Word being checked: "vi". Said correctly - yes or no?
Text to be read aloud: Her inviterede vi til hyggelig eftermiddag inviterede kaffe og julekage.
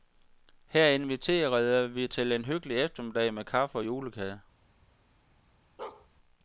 yes